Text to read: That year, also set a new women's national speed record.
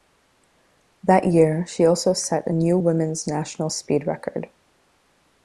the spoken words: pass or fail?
fail